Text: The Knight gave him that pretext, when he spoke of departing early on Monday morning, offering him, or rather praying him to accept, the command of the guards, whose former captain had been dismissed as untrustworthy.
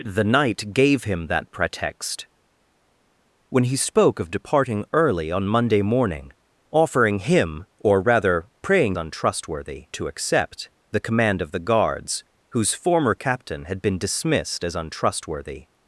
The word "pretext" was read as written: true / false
true